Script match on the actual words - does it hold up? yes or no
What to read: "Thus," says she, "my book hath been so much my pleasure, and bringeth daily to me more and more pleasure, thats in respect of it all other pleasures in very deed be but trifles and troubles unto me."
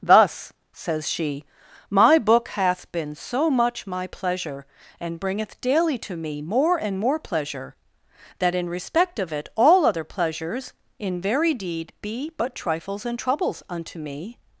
no